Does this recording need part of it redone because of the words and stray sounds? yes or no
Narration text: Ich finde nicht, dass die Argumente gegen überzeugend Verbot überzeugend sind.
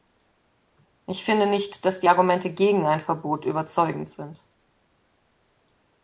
yes